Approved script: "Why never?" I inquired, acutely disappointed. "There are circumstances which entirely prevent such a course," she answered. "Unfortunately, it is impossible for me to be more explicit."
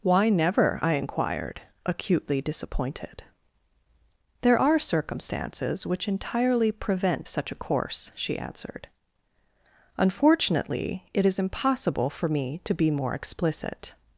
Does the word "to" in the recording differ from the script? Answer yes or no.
no